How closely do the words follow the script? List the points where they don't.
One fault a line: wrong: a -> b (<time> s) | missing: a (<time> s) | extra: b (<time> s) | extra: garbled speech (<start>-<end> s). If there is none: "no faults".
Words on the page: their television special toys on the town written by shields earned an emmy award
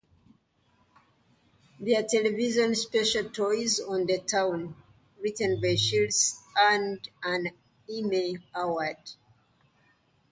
no faults